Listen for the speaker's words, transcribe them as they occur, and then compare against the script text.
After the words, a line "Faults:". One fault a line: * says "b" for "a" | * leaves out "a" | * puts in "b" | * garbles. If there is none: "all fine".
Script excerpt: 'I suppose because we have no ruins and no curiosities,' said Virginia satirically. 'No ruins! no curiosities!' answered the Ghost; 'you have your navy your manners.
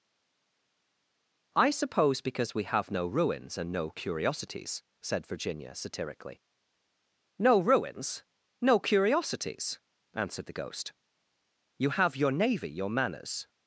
'I suppose because we have no ruins and no curiosities,' said Virginia satirically. 'No ruins! no curiosities!' answered the Ghost; 'you have your navy your manners.
Faults:
all fine